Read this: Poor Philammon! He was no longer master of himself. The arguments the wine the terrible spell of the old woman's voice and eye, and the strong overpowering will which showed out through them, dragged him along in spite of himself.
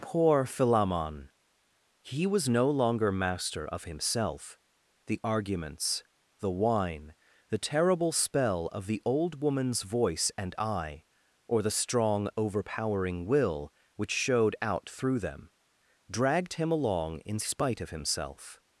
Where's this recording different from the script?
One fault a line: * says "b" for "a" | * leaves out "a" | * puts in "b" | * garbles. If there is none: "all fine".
* says "or" for "and"